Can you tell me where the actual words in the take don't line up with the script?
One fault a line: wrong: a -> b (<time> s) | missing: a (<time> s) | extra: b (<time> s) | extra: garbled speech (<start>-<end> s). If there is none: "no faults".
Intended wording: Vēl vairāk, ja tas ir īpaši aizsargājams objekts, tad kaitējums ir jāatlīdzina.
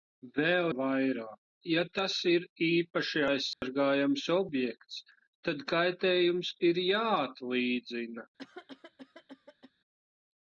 no faults